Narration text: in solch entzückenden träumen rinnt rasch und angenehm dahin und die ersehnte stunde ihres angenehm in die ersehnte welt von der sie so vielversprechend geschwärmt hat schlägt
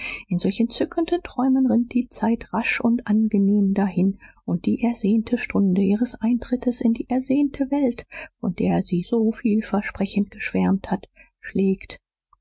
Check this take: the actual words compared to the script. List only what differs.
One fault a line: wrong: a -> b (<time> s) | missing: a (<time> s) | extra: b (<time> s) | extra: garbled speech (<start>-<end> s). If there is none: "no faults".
extra: die zeit (1.9 s)
wrong: angenehm -> eintrittes (6.2 s)